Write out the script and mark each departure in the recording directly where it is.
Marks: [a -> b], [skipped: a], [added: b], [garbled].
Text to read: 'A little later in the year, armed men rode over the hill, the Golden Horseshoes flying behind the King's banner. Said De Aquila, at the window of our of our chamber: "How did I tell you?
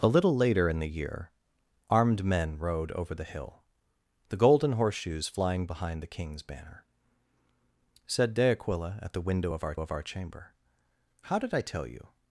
'A little later in the year, armed men rode over the hill, the Golden Horseshoes flying behind the King's banner. Said De Aquila, at the window of our of our chamber: "How did I tell you?